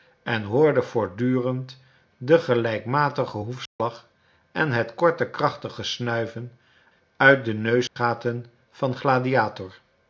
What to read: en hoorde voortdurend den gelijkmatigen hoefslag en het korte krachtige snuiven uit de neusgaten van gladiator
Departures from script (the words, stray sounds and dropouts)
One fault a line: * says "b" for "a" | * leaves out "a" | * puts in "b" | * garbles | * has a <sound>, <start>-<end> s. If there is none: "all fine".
* has a dropout, 3.7-3.8 s
* has a dropout, 7.9-8.0 s